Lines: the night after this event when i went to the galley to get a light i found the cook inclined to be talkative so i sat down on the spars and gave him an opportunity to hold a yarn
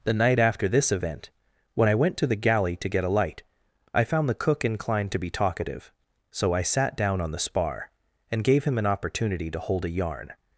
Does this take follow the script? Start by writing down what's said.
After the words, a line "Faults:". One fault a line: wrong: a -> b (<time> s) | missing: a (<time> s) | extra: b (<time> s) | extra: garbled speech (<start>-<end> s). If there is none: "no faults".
the night after this event when i went to the galley to get a light i found the cook inclined to be talkative so i sat down on the spar and gave him an opportunity to hold a yarn
Faults:
wrong: spars -> spar (7.4 s)